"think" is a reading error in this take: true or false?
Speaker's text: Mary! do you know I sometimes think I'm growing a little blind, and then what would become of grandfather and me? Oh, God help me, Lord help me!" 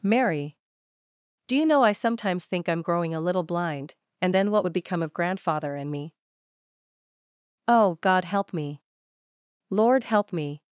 false